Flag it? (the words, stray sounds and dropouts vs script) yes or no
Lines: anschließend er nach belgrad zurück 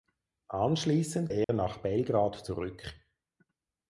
yes